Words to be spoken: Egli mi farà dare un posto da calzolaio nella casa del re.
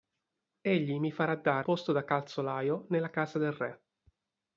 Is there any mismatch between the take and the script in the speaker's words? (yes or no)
yes